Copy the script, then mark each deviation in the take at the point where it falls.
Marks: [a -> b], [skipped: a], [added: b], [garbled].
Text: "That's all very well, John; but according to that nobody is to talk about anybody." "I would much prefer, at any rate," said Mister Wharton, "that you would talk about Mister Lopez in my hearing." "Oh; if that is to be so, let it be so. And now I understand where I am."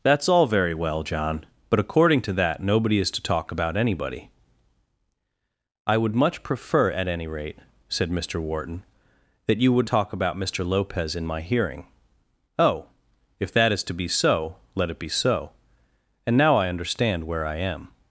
"That's all very well, John; but according to that nobody is to talk about anybody." "I would much prefer, at any rate," said Mister Wharton, "that you would talk about Mister Lopez in my hearing." "Oh; if that is to be so, let it be so. And now I understand where I am."